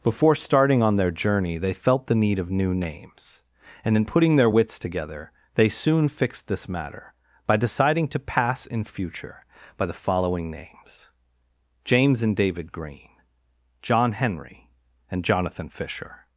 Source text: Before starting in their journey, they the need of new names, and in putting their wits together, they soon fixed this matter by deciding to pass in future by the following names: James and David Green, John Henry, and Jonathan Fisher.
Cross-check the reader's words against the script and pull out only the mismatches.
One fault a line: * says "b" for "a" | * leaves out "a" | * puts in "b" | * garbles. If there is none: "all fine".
* says "on" for "in"
* puts in "felt"